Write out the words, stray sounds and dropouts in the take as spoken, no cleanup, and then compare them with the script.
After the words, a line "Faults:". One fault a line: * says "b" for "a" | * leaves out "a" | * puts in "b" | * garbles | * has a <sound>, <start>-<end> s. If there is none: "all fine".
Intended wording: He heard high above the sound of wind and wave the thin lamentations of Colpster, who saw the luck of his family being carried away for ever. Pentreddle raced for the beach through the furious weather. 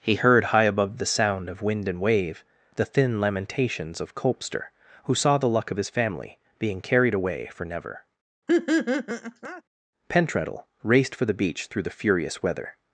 He heard high above the sound of wind and wave the thin lamentations of Colpster, who saw the luck of his family being carried away for never. Pentreddle raced for the beach through the furious weather.
Faults:
* says "never" for "ever"
* has a laugh, 8.5-9.6 s